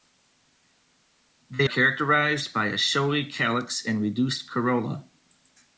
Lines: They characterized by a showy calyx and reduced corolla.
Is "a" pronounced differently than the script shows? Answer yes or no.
no